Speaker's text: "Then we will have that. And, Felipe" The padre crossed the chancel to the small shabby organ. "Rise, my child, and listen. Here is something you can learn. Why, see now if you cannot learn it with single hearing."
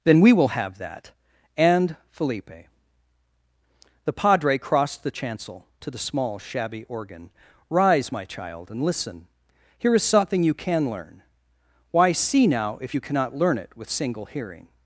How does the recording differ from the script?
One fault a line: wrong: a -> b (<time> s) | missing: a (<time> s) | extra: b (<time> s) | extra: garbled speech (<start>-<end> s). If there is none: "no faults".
no faults